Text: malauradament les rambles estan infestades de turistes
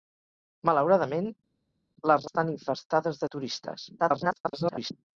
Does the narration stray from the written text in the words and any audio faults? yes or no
yes